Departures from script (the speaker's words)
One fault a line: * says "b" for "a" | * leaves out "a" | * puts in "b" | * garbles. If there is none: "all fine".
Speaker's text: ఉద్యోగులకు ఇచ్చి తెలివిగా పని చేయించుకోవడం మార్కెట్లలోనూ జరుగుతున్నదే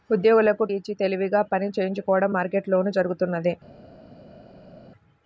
all fine